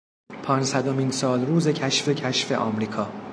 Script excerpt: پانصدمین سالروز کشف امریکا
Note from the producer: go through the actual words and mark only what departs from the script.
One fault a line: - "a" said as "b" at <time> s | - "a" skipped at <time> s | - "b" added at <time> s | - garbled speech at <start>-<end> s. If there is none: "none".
- "کشف" added at 2.1 s